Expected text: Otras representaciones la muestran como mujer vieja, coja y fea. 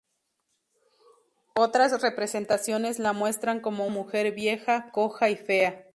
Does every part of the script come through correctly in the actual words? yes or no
yes